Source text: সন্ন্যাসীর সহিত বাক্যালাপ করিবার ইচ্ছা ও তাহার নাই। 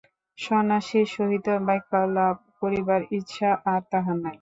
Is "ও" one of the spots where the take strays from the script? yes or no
yes